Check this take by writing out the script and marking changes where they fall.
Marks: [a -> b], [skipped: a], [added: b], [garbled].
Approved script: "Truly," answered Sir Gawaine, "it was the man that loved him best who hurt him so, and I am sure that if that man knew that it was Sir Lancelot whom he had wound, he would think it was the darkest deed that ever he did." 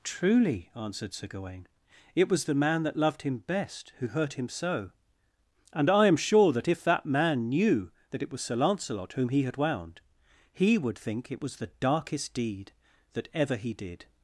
"Truly," answered Sir Gawaine, "it was the man that loved him best who hurt him so, and I am sure that if that man knew that it was Sir Lancelot whom he had wound, he would think it was the darkest deed that ever he did."